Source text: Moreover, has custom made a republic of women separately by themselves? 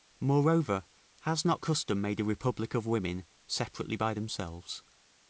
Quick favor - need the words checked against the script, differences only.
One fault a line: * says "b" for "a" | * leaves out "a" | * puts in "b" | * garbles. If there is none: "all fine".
* puts in "not"